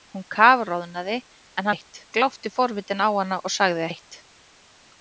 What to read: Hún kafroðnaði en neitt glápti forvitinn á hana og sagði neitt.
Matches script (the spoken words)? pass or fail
pass